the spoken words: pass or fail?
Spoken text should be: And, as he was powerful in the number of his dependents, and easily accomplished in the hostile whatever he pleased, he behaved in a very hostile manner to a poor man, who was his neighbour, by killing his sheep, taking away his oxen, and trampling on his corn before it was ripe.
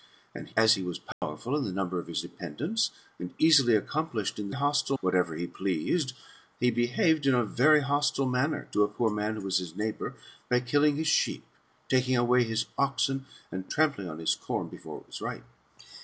pass